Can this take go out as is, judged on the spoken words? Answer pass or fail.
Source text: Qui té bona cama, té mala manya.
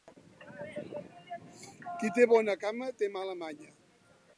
pass